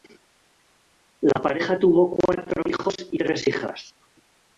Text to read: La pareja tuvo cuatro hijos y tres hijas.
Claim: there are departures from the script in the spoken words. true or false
false